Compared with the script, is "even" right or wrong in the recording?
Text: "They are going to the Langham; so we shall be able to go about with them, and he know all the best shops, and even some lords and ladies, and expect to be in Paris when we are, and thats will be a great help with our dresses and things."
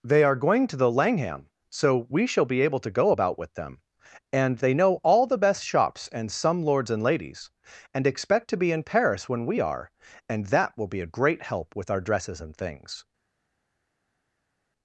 wrong